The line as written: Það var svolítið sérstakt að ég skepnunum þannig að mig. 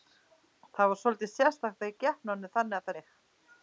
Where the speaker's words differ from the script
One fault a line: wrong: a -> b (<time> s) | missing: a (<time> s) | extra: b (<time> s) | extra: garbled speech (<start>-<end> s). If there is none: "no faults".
no faults